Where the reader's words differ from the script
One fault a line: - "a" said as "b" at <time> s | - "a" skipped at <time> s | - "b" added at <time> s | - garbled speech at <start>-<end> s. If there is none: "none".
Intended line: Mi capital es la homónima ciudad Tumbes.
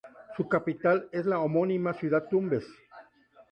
- "Mi" said as "Su" at 0.3 s